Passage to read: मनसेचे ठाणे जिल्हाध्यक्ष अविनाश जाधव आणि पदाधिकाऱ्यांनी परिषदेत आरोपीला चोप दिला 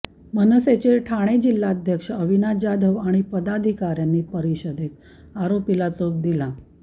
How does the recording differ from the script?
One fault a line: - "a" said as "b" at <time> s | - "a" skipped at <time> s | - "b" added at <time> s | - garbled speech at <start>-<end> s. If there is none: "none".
none